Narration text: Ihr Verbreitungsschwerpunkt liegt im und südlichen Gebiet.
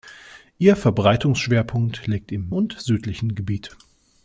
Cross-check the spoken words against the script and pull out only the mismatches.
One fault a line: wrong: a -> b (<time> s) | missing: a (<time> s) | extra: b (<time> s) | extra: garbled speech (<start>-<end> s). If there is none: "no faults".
no faults